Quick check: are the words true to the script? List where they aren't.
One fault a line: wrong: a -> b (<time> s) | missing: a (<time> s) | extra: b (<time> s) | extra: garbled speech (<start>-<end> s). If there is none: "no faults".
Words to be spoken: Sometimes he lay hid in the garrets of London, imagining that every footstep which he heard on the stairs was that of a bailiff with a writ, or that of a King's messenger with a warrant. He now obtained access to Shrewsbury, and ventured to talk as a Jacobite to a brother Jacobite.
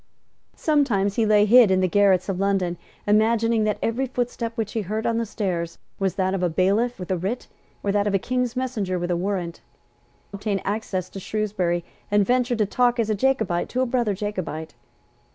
missing: He now (9.6 s)